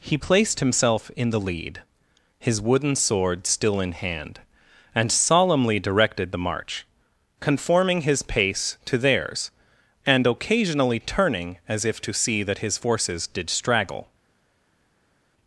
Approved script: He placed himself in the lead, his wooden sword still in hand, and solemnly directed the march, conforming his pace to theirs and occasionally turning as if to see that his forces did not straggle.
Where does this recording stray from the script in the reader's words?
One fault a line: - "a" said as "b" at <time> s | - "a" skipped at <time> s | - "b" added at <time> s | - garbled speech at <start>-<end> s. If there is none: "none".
- "not" skipped at 13.5 s